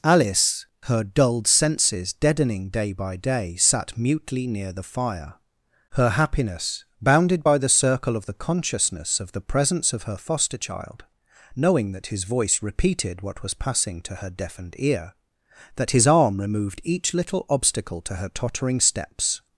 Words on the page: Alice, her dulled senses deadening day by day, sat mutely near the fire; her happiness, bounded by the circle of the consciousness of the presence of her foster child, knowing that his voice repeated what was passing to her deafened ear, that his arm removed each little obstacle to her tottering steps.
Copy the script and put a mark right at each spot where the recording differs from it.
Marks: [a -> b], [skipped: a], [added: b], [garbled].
Alice, her dulled senses deadening day by day, sat mutely near the fire; her happiness, bounded by the circle of the consciousness of the presence of her foster child, knowing that his voice repeated what was passing to her deafened ear, that his arm removed each little obstacle to her tottering steps.